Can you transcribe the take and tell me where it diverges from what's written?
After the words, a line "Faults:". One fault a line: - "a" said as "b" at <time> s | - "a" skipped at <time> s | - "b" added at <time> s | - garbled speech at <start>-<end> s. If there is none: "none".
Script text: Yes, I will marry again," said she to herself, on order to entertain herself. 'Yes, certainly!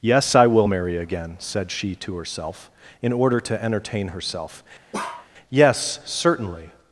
Yes, I will marry again," said she to herself, in order to entertain herself. 'Yes, certainly!
Faults:
- "on" said as "in" at 3.0 s